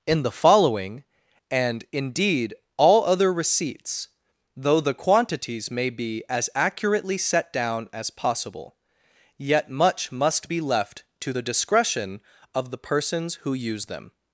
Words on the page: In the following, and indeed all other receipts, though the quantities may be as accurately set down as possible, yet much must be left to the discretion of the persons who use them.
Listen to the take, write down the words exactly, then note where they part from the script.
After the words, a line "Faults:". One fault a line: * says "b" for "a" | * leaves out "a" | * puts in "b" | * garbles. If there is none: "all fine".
In the following, and indeed all other receipts, though the quantities may be as accurately set down as possible, yet much must be left to the discretion of the persons who use them.
Faults:
all fine